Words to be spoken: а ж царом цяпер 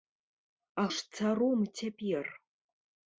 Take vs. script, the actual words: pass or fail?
pass